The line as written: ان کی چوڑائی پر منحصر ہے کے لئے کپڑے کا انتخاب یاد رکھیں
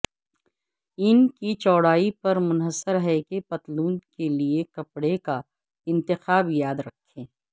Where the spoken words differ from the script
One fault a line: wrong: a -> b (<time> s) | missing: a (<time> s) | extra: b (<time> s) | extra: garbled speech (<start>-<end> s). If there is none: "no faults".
extra: کہ پتلون (3.2 s)